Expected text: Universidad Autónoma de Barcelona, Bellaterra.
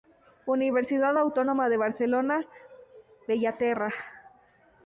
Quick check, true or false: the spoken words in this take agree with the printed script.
true